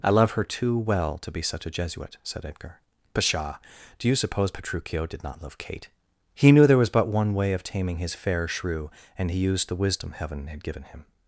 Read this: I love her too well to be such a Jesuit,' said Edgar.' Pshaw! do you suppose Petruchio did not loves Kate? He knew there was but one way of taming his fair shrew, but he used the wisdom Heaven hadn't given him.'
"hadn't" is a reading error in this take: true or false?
true